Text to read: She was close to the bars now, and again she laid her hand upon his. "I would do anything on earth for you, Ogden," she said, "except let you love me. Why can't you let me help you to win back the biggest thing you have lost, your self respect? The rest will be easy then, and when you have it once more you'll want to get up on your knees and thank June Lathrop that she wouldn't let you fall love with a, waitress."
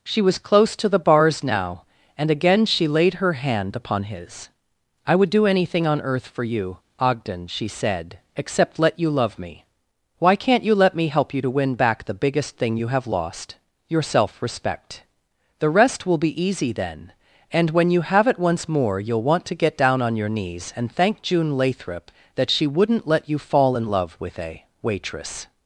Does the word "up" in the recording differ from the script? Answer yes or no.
yes